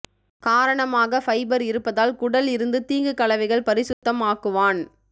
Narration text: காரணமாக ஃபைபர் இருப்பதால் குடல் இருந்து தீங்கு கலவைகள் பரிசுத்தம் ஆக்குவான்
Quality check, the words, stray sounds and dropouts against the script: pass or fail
fail